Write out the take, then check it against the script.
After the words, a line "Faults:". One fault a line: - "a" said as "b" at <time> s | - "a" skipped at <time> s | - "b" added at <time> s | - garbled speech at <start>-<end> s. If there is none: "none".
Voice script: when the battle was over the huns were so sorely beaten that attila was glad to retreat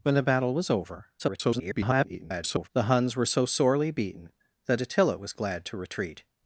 when the battle was over [garbled] the huns were so sorely beaten that attila was glad to retreat
Faults:
- garbled speech at 1.2-2.7 s